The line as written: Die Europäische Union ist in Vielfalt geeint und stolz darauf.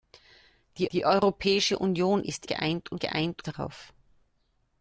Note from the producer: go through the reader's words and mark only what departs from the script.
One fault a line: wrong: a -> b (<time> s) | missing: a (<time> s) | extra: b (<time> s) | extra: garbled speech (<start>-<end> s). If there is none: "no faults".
extra: die (0.9 s)
missing: in Vielfalt (2.5 s)
wrong: stolz -> geeint (3.0 s)